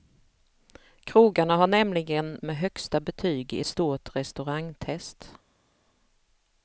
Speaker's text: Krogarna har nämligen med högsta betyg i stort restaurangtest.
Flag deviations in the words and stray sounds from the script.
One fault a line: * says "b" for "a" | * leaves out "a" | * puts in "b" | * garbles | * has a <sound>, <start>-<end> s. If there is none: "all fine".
all fine